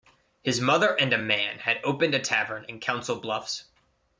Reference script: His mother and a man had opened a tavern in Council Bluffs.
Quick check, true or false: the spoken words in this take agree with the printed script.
true